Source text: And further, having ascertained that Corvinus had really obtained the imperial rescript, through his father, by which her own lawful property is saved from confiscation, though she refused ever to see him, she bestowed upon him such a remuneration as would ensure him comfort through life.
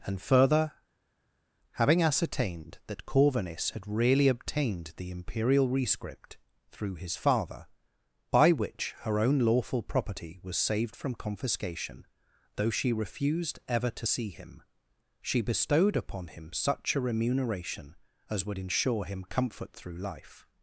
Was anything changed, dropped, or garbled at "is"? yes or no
yes